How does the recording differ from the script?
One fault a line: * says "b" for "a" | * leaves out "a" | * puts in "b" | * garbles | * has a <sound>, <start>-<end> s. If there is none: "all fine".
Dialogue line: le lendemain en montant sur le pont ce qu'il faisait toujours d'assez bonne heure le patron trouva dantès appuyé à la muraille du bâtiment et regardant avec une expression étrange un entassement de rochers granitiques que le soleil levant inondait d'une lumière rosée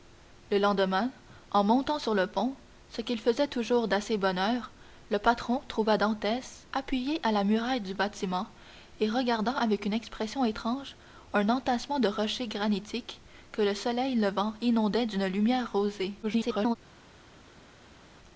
* garbles